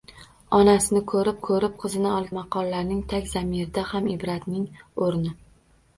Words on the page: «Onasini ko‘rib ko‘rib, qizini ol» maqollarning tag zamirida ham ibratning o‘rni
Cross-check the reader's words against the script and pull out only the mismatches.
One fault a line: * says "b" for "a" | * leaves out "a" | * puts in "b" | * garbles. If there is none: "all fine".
all fine